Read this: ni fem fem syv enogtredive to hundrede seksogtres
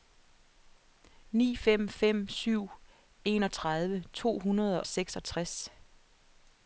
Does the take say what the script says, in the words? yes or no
yes